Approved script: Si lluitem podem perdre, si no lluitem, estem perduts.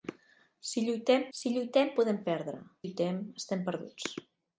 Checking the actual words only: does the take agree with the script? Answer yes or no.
no